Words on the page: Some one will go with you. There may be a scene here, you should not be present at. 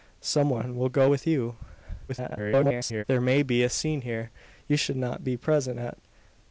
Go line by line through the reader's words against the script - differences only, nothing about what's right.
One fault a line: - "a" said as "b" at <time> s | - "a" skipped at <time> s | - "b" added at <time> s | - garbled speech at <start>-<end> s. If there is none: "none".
- garbled speech at 2.1-3.0 s